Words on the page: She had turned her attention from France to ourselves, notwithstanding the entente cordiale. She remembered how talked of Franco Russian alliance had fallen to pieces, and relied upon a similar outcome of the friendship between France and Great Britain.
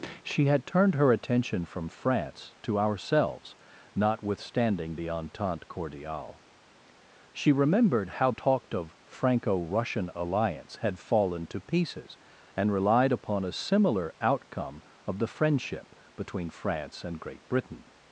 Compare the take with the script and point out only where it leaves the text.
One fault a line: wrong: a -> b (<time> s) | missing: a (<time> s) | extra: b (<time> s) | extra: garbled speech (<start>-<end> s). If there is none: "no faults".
no faults